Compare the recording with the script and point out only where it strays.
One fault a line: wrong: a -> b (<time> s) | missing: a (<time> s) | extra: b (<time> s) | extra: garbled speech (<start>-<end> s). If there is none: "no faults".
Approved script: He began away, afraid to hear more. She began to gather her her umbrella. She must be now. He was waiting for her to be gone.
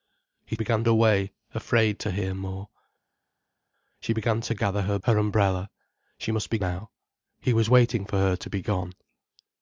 no faults